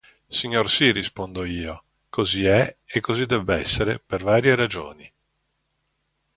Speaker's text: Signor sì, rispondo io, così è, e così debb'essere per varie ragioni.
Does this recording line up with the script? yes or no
yes